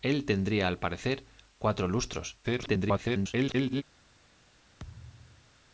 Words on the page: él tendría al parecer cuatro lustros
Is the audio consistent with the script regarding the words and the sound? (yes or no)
no